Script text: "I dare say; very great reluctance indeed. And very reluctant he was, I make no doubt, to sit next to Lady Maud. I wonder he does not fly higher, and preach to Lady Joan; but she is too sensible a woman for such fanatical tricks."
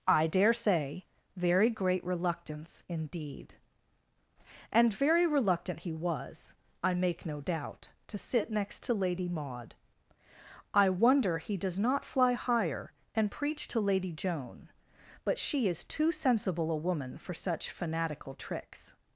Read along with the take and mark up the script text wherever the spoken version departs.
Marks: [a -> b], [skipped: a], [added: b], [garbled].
"I dare say; very great reluctance indeed. And very reluctant he was, I make no doubt, to sit next to Lady Maud. I wonder he does not fly higher, and preach to Lady Joan; but she is too sensible a woman for such fanatical tricks."